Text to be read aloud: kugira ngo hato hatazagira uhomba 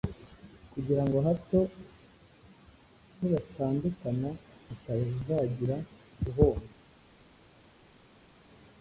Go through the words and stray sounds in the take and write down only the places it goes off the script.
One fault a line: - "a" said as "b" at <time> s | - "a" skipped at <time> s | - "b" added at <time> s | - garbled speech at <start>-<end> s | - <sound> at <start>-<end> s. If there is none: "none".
- "nibatandukana" added at 3.2 s